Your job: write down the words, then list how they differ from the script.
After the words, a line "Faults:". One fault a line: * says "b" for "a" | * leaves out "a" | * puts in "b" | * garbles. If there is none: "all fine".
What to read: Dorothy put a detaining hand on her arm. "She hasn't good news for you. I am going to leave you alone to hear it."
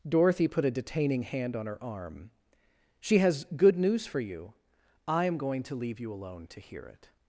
Dorothy put a detaining hand on her arm. "She has good news for you. I am going to leave you alone to hear it."
Faults:
* says "has" for "hasn't"